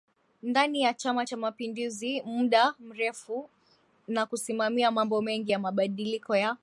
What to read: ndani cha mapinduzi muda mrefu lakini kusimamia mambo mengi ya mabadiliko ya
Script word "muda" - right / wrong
right